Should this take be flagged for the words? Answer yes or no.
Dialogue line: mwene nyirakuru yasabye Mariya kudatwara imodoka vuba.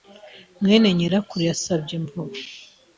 yes